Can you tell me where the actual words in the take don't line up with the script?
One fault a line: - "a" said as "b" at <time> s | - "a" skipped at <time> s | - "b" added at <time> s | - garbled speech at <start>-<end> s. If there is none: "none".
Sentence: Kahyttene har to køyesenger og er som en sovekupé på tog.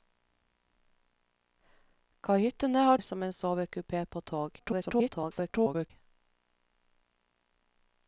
- "to køyesenger og" skipped at 3.0 s
- garbled speech at 4.6-5.9 s